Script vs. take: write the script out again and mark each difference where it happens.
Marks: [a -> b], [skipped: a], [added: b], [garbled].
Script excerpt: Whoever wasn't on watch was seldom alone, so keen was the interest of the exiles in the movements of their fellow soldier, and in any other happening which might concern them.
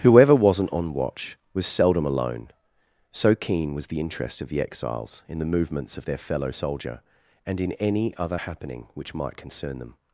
Whoever wasn't on watch was seldom alone, so keen was the interest of the exiles in the movements of their fellow soldier, and in any other happening which might concern them.